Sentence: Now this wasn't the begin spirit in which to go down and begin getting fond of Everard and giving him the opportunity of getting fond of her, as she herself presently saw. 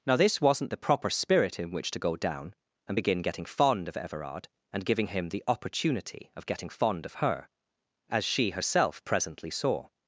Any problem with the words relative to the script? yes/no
yes